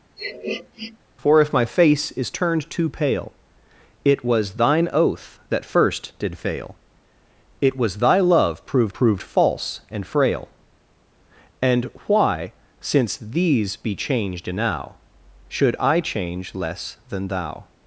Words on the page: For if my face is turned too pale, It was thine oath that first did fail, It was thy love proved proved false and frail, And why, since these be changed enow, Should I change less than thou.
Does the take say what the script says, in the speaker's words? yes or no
yes